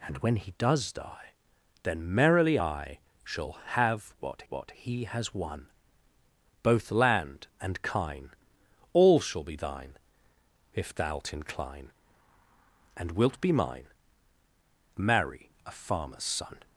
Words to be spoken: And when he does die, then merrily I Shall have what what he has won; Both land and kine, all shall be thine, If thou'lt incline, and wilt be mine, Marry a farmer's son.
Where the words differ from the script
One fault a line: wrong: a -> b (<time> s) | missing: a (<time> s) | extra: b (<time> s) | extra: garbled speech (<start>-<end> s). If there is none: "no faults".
no faults